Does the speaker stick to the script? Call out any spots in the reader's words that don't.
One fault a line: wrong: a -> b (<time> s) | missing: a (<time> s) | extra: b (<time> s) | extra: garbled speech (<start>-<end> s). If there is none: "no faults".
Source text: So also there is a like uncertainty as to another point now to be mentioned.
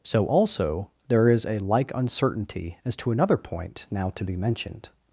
no faults